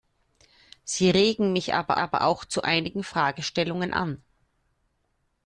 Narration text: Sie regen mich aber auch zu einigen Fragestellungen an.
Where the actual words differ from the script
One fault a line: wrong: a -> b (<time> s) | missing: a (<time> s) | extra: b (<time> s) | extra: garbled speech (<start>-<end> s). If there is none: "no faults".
extra: aber (2.0 s)